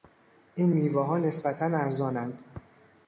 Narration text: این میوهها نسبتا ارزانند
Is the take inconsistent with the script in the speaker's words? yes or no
no